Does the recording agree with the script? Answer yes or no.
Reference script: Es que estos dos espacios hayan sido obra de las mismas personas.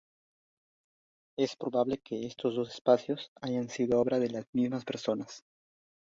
no